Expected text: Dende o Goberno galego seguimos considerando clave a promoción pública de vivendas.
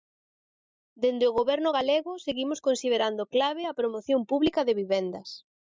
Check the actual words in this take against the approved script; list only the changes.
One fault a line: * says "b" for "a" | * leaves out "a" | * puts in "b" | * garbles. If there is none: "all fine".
all fine